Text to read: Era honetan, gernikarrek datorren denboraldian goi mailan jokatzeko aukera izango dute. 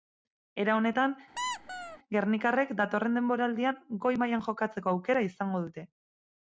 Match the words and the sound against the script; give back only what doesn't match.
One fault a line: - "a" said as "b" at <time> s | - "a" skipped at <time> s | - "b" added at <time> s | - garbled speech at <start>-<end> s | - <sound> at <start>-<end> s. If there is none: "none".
- squeak at 1.4-2.0 s